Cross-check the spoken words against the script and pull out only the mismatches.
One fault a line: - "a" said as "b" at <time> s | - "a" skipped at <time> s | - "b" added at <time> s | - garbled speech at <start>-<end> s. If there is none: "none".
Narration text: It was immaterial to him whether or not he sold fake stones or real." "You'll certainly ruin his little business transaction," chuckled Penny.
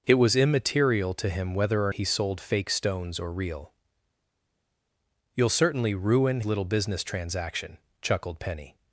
- "not" skipped at 1.9 s
- "his" skipped at 6.4 s